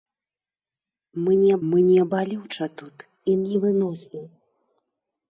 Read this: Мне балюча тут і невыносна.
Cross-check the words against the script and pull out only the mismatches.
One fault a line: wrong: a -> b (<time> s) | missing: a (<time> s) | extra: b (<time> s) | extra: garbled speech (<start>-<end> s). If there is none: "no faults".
extra: мне (1.7 s)